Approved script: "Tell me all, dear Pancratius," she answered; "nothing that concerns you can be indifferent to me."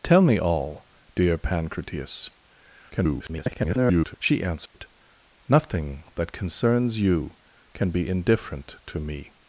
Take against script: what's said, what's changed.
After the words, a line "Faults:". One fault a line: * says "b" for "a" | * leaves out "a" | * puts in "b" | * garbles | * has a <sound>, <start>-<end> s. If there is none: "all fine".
"Tell me all, dear Pancratius," [garbled] she answered; "nothing that concerns you can be indifferent to me."
Faults:
* garbles
* has a dropout, 4.7-4.7 s